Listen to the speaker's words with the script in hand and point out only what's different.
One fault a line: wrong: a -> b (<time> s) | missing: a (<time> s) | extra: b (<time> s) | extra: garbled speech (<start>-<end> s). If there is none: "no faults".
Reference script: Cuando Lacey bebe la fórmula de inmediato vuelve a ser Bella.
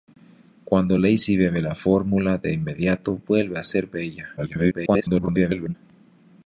extra: garbled speech (4.4-5.7 s)